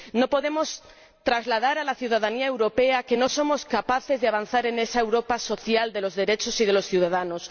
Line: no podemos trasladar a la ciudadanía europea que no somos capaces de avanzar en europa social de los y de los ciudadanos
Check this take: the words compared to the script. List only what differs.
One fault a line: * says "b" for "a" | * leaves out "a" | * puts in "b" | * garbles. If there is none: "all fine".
* puts in "esa"
* puts in "derechos"